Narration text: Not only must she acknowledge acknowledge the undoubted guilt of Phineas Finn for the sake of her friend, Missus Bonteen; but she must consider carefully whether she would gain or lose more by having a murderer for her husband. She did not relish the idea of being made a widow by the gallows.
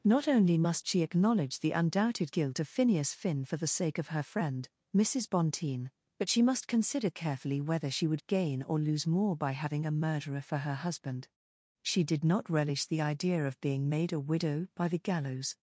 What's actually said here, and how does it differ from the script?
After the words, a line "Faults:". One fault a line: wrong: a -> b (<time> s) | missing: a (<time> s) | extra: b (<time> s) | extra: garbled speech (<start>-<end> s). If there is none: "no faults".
Not only must she acknowledge the undoubted guilt of Phineas Finn for the sake of her friend, Missus Bonteen; but she must consider carefully whether she would gain or lose more by having a murderer for her husband. She did not relish the idea of being made a widow by the gallows.
Faults:
missing: acknowledge (1.6 s)